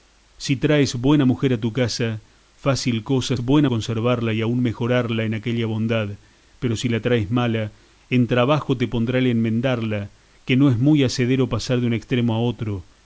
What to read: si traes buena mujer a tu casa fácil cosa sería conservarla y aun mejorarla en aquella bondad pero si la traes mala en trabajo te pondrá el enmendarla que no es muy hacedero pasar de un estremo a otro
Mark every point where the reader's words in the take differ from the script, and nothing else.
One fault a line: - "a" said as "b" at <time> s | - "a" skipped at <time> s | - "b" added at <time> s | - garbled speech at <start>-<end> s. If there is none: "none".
- "sería" said as "buena" at 3.4 s